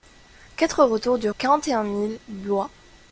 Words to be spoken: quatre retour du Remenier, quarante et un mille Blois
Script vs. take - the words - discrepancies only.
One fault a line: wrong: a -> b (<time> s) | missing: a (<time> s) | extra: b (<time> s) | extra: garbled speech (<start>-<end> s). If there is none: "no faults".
missing: Remenier (1.3 s)